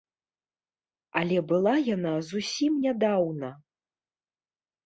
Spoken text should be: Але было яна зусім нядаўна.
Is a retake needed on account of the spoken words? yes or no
yes